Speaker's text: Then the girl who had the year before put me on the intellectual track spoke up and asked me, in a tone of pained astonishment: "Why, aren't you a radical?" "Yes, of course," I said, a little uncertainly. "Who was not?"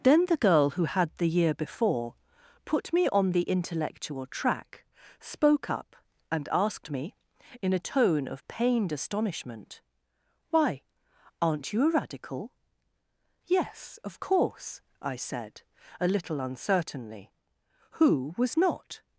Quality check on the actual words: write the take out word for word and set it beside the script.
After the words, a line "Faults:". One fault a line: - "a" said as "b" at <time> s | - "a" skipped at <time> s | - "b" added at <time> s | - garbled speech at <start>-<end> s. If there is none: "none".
Then the girl who had the year before put me on the intellectual track spoke up and asked me, in a tone of pained astonishment: "Why, aren't you a radical?" "Yes, of course," I said, a little uncertainly. "Who was not?"
Faults:
none